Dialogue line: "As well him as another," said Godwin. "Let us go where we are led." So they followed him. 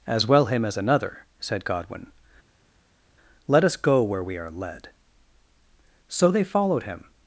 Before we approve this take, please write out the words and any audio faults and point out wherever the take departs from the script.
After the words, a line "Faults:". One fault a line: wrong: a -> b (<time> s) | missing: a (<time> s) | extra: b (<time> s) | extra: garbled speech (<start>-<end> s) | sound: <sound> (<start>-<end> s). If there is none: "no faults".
"As well him as another," said Godwin. "Let us go where we are led." So they followed him.
Faults:
no faults